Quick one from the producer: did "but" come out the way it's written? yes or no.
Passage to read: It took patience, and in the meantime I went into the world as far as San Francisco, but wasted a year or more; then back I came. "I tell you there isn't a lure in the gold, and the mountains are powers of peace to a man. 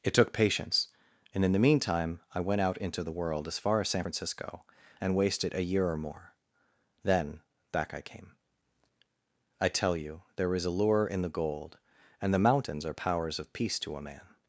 no